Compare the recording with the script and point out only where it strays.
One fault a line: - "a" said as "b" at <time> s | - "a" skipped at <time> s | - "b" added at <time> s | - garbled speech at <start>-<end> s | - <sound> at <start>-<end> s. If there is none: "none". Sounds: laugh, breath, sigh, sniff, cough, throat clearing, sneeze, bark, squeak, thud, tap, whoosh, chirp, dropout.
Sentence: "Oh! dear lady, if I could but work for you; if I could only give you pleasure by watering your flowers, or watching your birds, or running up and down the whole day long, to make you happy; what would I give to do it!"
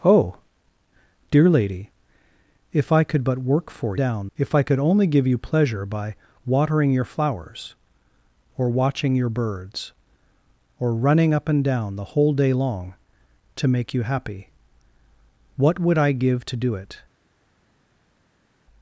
- "you" said as "down" at 4.0 s